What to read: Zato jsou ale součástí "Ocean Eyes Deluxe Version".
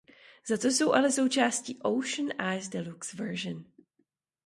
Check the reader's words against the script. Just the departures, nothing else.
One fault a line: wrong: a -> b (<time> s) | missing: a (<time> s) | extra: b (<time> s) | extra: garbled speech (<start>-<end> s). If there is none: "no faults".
no faults